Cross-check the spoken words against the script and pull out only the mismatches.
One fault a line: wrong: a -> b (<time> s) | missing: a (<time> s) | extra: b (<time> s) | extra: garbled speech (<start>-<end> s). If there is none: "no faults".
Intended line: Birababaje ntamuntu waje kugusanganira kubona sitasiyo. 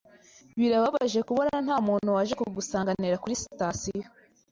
extra: kubona (1.3 s)
wrong: kubona -> kuri (3.2 s)